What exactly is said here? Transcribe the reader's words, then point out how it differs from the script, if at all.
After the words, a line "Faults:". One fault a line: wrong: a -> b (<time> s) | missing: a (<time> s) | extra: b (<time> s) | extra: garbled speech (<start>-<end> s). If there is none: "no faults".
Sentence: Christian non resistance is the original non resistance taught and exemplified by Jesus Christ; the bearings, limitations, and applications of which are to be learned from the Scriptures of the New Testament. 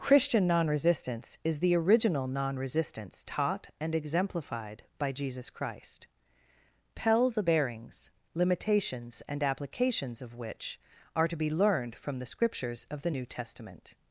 Christian non resistance is the original non resistance taught and exemplified by Jesus Christ; pell the bearings, limitations, and applications of which are to be learned from the Scriptures of the New Testament.
Faults:
extra: pell (7.0 s)